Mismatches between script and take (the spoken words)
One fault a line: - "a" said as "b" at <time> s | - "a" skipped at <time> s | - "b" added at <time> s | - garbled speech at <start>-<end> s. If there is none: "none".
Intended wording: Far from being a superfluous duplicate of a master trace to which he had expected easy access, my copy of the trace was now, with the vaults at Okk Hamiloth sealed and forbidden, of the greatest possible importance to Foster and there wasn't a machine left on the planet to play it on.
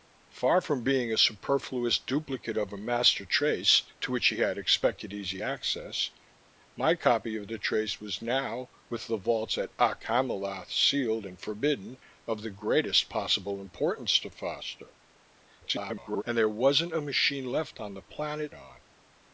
- garbled speech at 15.6-16.2 s
- "to play it" skipped at 18.5 s